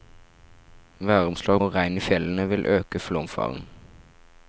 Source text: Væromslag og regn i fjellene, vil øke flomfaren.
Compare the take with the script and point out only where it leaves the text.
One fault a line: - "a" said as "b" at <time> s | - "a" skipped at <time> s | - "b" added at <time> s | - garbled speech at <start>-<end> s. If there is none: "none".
none